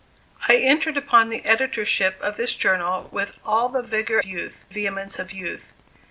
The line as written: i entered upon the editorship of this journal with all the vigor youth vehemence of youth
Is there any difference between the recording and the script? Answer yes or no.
no